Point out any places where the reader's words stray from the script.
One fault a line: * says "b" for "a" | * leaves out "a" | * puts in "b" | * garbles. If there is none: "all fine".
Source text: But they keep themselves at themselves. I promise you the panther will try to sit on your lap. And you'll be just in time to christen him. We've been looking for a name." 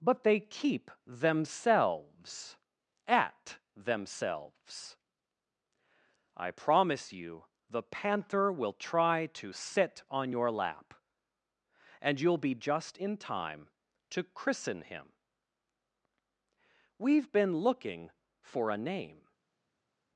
all fine